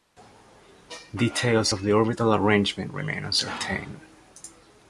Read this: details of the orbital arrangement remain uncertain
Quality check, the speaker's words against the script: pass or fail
pass